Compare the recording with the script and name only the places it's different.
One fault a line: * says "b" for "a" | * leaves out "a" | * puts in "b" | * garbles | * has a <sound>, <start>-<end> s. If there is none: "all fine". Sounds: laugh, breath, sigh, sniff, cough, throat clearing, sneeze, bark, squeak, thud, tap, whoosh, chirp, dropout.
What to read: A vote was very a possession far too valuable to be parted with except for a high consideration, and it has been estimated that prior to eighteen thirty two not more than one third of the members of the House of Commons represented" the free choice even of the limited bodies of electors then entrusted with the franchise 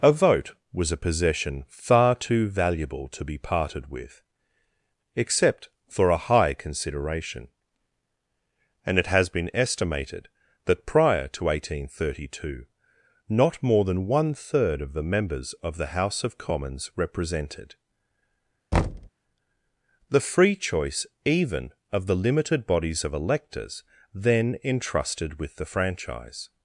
* leaves out "very"
* has a thud, 18.7-19.1 s